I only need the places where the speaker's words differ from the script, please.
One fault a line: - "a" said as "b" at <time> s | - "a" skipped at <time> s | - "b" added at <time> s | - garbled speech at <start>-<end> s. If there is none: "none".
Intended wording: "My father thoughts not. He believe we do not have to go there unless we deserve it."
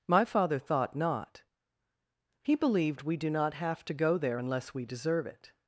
- "thoughts" said as "thought" at 0.6 s
- "believe" said as "believed" at 2.5 s